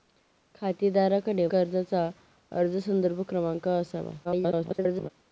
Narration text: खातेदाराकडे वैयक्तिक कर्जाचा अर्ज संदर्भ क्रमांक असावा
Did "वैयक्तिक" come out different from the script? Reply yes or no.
yes